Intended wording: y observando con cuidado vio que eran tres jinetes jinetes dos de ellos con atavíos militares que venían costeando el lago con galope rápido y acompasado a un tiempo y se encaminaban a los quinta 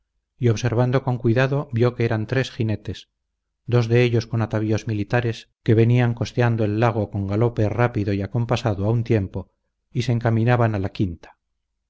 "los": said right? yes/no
no